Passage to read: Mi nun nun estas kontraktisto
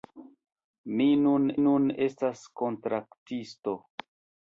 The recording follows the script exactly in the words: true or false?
true